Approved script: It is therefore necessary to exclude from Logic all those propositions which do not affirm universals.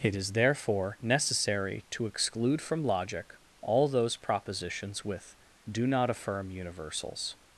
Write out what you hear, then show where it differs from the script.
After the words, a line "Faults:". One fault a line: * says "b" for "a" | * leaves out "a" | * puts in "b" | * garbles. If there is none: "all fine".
It is therefore necessary to exclude from Logic all those propositions with do not affirm universals.
Faults:
* says "with" for "which"